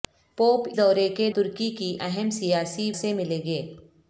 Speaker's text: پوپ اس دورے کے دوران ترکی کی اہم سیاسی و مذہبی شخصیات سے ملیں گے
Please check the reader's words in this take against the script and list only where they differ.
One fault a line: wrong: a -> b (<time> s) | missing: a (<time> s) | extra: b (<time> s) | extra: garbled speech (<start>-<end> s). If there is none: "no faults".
missing: اس (0.7 s)
missing: دوران (1.3 s)
missing: و مذہبی شخصیات (2.9 s)